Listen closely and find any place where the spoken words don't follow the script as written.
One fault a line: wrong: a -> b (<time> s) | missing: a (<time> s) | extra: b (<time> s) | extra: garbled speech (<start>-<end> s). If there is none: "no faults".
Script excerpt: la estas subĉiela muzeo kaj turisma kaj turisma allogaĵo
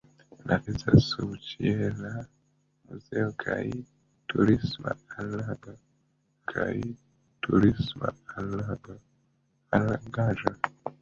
no faults